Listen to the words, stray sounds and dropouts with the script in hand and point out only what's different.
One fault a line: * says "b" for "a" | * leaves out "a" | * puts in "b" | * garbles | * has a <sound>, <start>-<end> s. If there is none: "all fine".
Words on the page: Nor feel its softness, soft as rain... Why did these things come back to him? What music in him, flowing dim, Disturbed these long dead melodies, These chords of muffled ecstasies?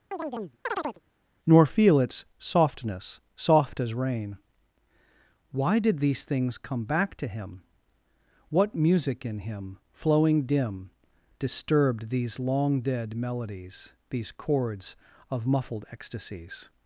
* has a chirp, 0.1-1.0 s